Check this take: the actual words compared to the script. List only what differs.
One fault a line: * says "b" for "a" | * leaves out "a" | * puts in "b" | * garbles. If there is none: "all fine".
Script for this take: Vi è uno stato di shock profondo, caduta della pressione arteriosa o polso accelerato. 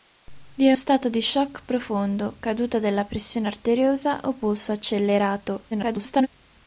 * leaves out "uno"
* garbles